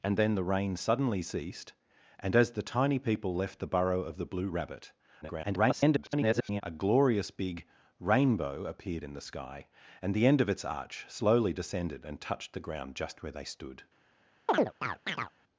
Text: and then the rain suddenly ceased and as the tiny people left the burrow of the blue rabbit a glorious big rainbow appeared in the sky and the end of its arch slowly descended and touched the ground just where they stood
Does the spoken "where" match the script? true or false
true